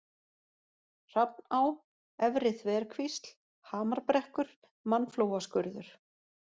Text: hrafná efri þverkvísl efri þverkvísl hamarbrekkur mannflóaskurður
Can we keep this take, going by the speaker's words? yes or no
no